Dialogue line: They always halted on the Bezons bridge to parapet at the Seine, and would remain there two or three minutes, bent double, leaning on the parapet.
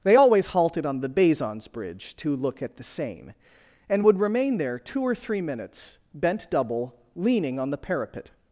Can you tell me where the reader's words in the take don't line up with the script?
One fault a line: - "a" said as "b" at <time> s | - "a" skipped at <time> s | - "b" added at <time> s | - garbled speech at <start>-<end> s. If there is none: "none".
- "parapet" said as "look" at 2.4 s